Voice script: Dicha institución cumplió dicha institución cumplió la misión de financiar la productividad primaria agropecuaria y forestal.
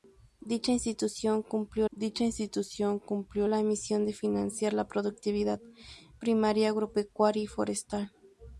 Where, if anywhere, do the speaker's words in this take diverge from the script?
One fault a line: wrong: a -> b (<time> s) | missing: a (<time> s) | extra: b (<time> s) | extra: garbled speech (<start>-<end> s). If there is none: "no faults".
no faults